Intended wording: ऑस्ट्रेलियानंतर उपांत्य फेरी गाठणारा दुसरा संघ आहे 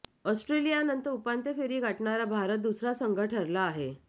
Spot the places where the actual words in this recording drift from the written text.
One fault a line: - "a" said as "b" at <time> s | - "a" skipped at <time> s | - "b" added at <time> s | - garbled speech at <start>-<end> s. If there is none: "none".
- "भारत" added at 2.3 s
- "ठरला" added at 3.2 s